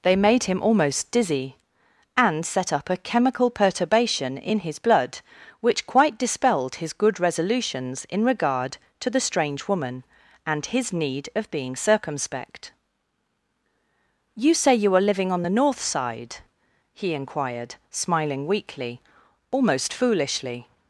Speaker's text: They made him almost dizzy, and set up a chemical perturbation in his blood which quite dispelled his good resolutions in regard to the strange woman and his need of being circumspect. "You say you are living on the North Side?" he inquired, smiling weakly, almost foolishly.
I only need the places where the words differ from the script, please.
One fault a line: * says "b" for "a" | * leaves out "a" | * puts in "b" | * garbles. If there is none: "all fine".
all fine